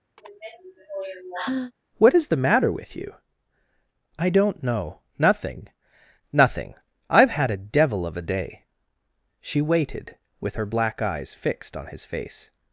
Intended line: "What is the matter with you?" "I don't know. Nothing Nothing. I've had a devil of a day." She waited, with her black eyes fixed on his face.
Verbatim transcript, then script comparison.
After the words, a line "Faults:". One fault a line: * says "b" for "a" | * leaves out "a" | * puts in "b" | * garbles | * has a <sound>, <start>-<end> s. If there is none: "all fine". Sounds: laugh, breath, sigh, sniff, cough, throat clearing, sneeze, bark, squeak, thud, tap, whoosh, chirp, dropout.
"What is the matter with you?" "I don't know. Nothing Nothing. I've had a devil of a day." She waited, with her black eyes fixed on his face.
Faults:
* has a sigh, 0.2-1.7 s